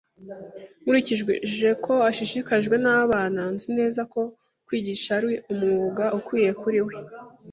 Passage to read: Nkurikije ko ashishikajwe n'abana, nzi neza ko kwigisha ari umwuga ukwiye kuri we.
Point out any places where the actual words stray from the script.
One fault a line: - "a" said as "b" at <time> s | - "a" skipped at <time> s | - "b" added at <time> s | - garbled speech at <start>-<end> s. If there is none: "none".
none